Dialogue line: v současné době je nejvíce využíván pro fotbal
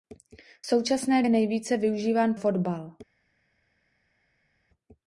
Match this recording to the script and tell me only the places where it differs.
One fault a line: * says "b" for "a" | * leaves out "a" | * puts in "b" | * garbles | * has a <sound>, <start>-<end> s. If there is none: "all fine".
* leaves out "době"
* leaves out "pro"